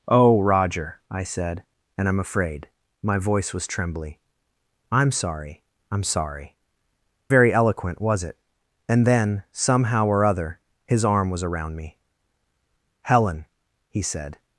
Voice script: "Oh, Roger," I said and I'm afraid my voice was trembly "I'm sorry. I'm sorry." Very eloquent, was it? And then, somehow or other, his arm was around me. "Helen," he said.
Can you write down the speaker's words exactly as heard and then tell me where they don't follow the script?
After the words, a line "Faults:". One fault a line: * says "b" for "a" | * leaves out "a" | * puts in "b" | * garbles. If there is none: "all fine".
"Oh, Roger," I said and I'm afraid my voice was trembly "I'm sorry. I'm sorry." Very eloquent, was it? And then, somehow or other, his arm was around me. "Helen," he said.
Faults:
all fine